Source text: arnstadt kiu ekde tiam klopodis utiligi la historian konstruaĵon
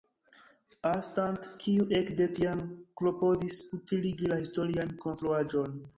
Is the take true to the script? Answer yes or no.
yes